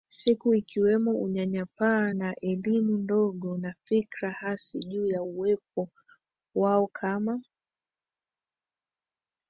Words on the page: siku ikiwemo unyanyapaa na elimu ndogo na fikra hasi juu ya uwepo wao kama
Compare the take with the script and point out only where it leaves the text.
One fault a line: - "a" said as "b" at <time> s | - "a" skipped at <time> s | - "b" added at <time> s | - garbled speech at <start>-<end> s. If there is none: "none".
none